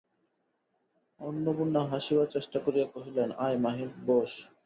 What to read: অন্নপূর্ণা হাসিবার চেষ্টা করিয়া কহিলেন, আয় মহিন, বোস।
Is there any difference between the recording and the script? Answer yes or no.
no